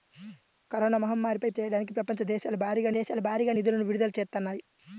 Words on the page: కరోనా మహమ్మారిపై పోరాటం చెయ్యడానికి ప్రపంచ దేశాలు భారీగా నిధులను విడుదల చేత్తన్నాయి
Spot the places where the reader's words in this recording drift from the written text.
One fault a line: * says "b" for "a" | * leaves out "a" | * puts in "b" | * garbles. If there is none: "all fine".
* leaves out "పోరాటం"
* puts in "దేశాలు భారీగా"